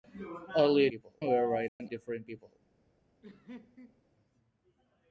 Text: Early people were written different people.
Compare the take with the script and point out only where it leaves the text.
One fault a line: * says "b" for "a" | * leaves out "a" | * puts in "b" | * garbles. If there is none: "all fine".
all fine